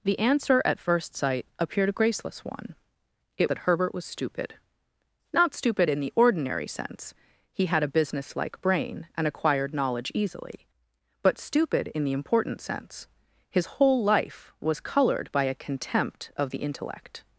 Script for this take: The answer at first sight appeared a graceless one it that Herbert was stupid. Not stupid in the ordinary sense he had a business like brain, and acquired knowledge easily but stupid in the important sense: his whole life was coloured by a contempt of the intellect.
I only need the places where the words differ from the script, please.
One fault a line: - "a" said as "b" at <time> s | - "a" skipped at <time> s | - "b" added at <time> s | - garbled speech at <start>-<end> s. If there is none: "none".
none